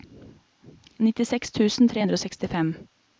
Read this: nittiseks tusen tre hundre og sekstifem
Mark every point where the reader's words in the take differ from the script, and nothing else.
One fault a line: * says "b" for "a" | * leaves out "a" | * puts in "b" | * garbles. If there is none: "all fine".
all fine